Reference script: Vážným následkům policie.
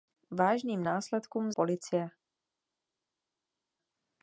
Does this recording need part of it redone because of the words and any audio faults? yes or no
no